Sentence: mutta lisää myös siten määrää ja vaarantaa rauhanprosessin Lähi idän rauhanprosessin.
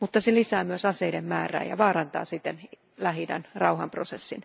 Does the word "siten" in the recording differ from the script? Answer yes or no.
yes